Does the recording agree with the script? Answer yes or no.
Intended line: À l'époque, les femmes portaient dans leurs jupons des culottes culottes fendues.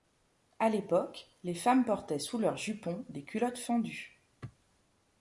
no